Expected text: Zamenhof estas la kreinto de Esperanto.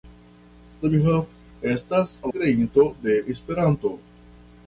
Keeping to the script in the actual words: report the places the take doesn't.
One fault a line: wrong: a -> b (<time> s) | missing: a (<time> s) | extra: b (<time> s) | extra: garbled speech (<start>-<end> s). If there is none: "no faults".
missing: la (2.1 s)